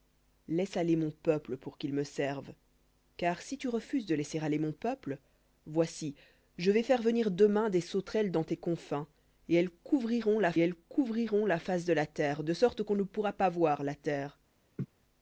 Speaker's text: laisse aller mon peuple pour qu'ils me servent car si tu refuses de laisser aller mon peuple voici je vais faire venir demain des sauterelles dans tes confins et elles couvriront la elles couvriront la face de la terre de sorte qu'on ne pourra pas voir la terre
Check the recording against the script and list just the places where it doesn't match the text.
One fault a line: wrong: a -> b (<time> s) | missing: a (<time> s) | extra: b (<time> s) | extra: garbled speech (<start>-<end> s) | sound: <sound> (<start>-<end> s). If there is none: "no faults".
sound: laugh (14.8-14.9 s)